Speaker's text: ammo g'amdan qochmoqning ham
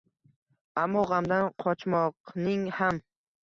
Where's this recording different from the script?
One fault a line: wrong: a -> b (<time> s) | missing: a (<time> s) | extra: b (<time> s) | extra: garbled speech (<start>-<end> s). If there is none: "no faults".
no faults